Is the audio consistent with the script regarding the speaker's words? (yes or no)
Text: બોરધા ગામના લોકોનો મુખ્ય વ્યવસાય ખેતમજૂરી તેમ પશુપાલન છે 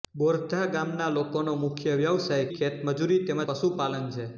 yes